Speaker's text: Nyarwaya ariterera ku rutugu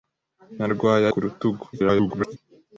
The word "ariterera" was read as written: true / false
false